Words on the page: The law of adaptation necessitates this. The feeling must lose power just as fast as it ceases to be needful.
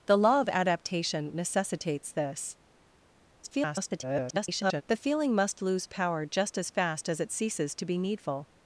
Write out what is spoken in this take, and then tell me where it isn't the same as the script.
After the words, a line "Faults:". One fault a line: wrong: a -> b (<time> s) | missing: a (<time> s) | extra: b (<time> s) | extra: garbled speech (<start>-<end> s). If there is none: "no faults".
The law of adaptation necessitates this. [garbled] The feeling must lose power just as fast as it ceases to be needful.
Faults:
extra: garbled speech (3.4-4.8 s)